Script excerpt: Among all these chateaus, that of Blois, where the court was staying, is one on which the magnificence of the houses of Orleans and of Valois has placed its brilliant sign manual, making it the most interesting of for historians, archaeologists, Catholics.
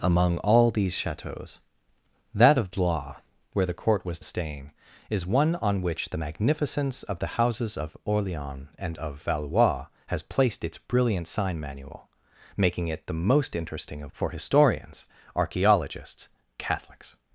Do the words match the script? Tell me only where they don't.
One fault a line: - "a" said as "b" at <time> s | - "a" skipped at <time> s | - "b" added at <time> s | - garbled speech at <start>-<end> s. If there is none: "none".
none